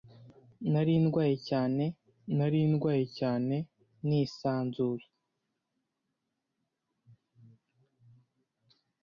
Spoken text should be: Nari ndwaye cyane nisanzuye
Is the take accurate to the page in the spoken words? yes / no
no